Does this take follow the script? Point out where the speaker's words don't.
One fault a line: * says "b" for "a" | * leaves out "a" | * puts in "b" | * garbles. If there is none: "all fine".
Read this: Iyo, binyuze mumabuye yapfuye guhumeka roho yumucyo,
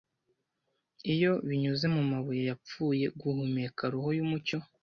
all fine